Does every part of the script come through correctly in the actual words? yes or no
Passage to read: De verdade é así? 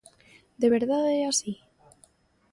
yes